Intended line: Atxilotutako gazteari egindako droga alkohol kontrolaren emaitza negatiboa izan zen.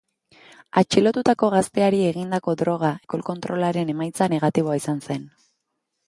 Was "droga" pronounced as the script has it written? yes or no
yes